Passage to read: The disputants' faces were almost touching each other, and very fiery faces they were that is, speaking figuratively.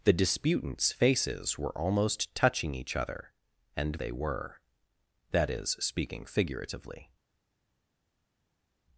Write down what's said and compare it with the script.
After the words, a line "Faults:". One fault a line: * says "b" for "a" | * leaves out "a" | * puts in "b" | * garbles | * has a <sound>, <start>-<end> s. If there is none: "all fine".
The disputants' faces were almost touching each other, and they were that is, speaking figuratively.
Faults:
* leaves out "very fiery faces"